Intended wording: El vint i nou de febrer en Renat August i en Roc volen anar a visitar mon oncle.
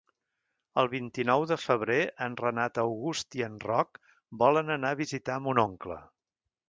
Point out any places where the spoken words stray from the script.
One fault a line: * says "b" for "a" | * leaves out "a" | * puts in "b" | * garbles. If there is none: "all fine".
all fine